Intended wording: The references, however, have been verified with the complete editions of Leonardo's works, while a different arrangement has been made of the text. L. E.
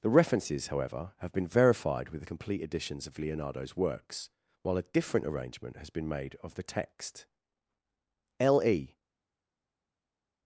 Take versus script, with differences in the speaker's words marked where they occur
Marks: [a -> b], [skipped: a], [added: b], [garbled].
The references, however, have been verified with the complete editions of Leonardo's works, while a different arrangement has been made of the text. L. E.